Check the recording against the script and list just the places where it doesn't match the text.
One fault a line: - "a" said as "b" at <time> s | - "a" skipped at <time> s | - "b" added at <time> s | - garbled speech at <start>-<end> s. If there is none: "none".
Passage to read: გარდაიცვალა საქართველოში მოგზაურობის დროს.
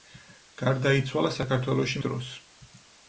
- "მოგზაურობის" skipped at 2.0 s